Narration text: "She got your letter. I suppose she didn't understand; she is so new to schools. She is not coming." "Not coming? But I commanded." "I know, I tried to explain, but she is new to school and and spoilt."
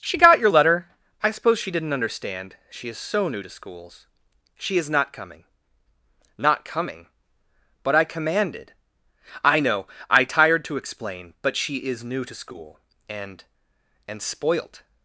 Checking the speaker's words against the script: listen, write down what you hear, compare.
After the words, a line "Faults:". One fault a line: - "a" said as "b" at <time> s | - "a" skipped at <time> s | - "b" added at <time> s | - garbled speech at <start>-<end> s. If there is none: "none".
"She got your letter. I suppose she didn't understand; she is so new to schools. She is not coming." "Not coming? But I commanded." "I know, I tired to explain, but she is new to school and and spoilt."
Faults:
- "tried" said as "tired" at 10.3 s